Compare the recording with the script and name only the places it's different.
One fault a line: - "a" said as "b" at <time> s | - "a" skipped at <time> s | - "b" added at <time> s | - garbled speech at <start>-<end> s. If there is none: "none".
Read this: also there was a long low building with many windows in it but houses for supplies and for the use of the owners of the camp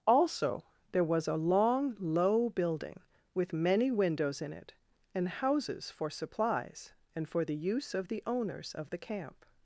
- "but" said as "and" at 5.1 s